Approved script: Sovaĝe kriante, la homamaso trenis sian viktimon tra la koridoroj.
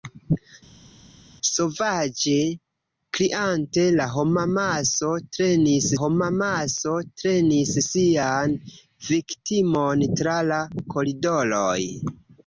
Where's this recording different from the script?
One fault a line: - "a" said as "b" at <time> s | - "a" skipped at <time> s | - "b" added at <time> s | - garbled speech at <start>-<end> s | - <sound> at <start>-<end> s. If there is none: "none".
- "homamaso trenis" added at 6.0 s